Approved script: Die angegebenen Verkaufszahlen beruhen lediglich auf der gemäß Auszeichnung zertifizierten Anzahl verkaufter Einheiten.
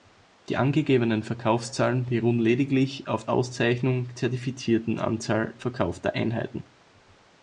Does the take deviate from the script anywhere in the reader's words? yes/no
yes